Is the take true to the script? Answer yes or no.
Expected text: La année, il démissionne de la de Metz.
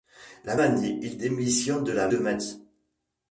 yes